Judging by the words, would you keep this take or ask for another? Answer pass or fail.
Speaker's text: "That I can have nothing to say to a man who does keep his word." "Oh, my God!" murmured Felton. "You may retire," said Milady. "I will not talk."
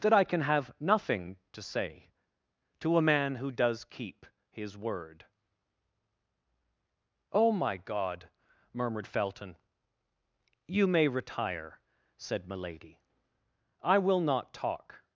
pass